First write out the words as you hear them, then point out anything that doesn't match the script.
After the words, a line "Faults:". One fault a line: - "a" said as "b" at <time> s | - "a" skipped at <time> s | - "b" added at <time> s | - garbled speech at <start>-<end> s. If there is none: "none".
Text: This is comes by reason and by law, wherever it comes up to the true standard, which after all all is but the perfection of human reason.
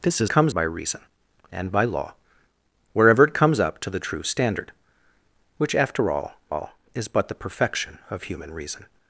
This is comes by reason and by law, wherever it comes up to the true standard, which after all all is but the perfection of human reason.
Faults:
none